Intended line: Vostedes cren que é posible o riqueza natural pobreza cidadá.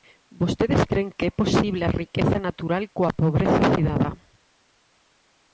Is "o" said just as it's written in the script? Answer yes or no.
no